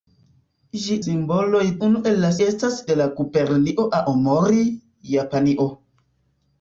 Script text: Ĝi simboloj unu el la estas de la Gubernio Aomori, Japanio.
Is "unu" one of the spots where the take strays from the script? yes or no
no